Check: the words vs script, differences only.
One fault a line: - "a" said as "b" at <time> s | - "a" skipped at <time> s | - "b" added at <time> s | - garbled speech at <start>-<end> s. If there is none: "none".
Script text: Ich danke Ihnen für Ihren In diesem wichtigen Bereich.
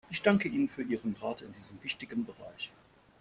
- "Rat" added at 1.2 s